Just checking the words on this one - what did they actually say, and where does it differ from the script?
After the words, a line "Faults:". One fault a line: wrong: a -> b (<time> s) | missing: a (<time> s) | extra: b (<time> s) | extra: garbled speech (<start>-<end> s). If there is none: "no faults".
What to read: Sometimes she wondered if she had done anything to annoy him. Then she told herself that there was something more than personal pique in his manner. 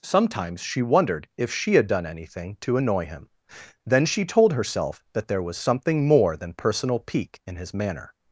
Sometimes she wondered if she had done anything to annoy him. Then she told herself that there was something more than personal pique in his manner.
Faults:
no faults